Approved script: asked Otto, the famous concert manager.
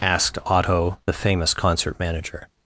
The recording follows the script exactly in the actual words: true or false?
true